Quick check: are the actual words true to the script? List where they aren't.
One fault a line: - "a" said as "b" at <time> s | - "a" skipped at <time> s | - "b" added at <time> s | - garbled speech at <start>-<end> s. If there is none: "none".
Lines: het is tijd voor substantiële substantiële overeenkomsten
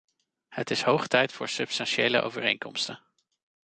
- "hoog" added at 0.8 s
- "substantiële" skipped at 2.2 s